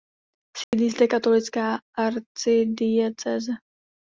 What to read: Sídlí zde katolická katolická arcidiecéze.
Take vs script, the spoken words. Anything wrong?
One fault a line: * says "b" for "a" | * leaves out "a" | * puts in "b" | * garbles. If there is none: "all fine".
* leaves out "katolická"